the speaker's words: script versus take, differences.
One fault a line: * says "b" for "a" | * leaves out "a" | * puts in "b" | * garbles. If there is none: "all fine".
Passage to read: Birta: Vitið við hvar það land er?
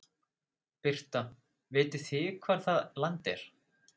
* says "þið" for "við"